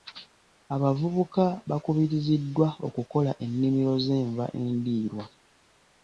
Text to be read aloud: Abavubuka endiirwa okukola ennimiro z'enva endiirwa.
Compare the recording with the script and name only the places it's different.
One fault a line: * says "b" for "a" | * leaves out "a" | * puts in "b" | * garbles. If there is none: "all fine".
* says "bakubiriziddwa" for "endiirwa"